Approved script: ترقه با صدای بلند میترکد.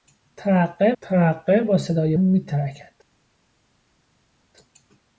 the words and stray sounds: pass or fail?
fail